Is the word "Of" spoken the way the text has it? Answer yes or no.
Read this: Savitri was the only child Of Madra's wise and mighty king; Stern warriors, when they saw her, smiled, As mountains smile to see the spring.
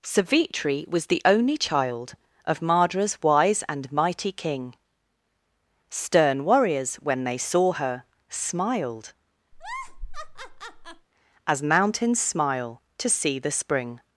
yes